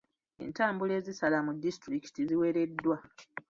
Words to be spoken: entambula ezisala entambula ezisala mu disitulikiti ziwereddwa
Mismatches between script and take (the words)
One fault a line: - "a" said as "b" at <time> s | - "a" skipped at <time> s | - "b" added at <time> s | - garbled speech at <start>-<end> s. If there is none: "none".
- "entambula ezisala" skipped at 1.4 s